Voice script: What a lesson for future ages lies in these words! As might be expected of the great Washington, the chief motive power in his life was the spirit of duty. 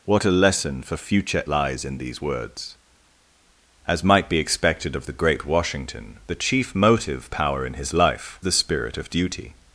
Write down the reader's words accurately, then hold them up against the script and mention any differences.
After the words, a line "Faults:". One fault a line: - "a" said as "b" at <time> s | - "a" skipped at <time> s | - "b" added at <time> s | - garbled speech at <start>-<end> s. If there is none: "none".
What a lesson for future lies in these words! As might be expected of the great Washington, the chief motive power in his life the spirit of duty.
Faults:
- "ages" skipped at 1.4 s
- "was" skipped at 8.4 s